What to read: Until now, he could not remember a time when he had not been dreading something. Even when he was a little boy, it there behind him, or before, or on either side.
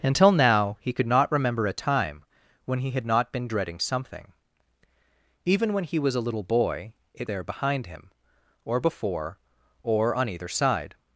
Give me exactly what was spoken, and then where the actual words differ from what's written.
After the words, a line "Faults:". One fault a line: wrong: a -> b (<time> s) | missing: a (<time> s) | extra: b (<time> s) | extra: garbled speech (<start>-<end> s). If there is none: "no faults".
Until now, he could not remember a time when he had not been dreading something. Even when he was a little boy, it there behind him, or before, or on either side.
Faults:
no faults